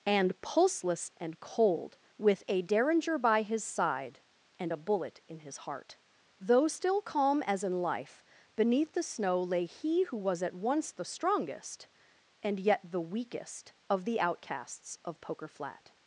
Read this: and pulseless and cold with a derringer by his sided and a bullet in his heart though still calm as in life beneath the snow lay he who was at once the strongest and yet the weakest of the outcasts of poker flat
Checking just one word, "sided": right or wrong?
wrong